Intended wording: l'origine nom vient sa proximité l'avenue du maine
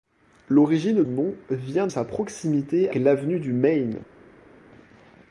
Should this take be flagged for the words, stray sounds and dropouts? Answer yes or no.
no